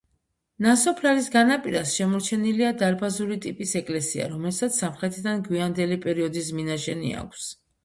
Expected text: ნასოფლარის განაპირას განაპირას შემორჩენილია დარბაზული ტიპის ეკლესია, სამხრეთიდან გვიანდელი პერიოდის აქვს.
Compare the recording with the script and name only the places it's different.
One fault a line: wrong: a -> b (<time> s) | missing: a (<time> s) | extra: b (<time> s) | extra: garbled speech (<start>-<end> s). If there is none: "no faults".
missing: განაპირას (1.9 s)
extra: რომელსაც (4.3 s)
extra: მინაშენი (6.6 s)